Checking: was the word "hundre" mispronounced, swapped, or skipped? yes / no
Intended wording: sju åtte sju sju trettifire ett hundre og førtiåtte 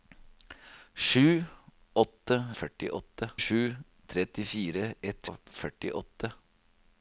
yes